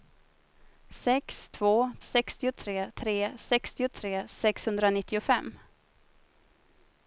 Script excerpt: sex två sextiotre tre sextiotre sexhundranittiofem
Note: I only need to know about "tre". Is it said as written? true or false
true